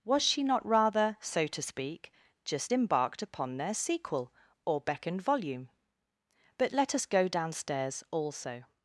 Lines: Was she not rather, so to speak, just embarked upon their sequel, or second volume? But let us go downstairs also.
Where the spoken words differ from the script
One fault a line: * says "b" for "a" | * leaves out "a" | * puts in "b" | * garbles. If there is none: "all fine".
* says "beckoned" for "second"